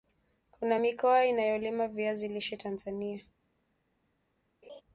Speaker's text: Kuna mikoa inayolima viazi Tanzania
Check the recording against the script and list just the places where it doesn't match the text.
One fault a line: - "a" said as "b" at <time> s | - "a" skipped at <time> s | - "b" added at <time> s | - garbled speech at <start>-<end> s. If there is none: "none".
- "lishe" added at 2.3 s